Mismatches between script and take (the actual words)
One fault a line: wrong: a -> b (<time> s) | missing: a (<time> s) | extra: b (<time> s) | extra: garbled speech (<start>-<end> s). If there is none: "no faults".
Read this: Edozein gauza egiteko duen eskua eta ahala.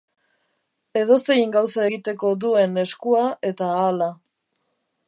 no faults